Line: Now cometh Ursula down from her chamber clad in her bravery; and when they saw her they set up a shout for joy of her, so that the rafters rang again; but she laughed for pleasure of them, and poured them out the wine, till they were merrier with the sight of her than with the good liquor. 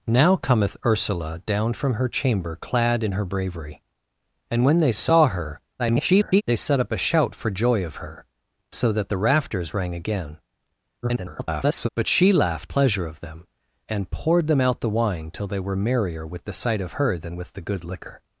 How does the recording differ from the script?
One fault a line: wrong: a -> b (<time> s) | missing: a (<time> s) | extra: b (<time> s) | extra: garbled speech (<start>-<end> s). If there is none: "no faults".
extra: garbled speech (5.8-6.4 s)
extra: garbled speech (11.0-11.9 s)
missing: for (12.7 s)